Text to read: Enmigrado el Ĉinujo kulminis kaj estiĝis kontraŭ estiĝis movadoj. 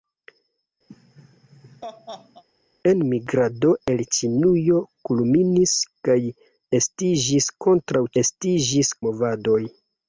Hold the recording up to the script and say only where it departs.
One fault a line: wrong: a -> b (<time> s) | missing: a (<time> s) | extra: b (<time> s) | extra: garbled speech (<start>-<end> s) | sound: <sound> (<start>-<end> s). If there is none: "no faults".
sound: laugh (0.9-2.4 s)